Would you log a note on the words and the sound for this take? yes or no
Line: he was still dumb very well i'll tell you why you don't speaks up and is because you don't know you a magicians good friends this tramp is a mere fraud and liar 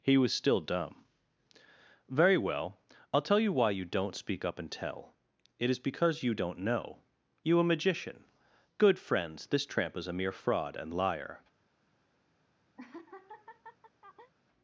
yes